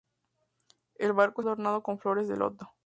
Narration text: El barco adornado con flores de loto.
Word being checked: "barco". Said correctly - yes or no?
yes